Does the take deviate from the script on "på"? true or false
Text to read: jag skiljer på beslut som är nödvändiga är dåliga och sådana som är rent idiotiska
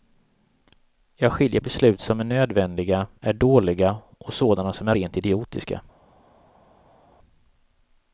true